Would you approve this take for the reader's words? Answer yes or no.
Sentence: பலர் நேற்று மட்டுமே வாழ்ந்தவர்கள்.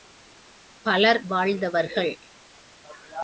no